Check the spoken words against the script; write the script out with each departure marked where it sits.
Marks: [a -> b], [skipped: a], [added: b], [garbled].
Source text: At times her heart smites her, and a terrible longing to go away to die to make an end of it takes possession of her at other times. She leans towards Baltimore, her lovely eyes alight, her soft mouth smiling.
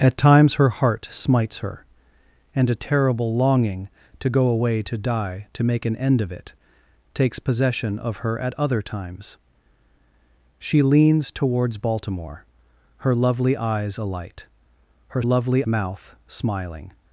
At times her heart smites her, and a terrible longing to go away to die to make an end of it takes possession of her at other times. She leans towards Baltimore, her lovely eyes alight, her [soft -> lovely] mouth smiling.